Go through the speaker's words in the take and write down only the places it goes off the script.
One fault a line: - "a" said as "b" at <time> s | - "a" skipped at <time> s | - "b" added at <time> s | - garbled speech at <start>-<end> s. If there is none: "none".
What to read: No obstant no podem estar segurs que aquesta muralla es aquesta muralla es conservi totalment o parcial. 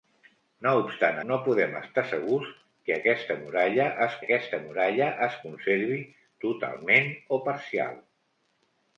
none